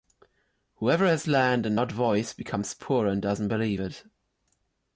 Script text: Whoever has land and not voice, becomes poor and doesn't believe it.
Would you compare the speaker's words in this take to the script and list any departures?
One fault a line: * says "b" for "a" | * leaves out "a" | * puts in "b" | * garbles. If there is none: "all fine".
all fine